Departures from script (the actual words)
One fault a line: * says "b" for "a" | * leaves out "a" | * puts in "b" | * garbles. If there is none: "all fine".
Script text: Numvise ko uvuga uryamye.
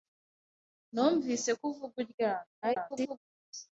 * garbles